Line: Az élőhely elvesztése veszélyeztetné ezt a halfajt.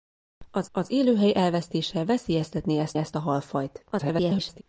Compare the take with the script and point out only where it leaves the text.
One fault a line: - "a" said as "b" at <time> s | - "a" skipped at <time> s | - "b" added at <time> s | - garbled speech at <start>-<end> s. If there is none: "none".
- "az" added at 0.7 s
- "ezt" added at 3.0 s
- garbled speech at 3.9-4.6 s